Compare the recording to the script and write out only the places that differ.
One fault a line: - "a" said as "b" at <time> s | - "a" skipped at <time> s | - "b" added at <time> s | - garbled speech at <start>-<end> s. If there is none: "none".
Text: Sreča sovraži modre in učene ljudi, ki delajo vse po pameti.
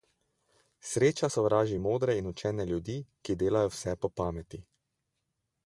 none